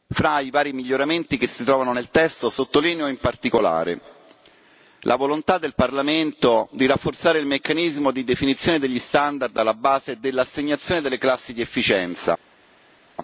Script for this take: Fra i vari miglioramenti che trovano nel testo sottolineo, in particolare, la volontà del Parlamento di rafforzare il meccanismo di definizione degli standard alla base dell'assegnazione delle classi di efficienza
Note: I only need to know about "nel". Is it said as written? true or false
true